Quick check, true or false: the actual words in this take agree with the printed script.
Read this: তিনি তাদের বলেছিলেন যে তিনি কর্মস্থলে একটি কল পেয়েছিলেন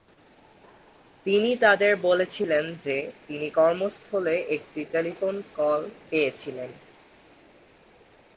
false